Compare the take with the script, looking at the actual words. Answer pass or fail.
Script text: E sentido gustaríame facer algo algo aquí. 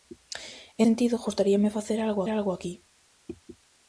pass